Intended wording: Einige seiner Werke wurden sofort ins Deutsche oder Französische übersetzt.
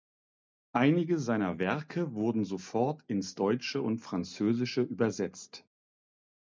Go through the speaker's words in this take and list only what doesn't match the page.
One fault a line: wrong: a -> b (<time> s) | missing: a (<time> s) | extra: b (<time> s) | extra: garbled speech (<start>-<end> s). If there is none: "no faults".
wrong: oder -> und (3.8 s)